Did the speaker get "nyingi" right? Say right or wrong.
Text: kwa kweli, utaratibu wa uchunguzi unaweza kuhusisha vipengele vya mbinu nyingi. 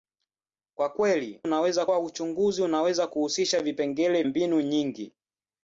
right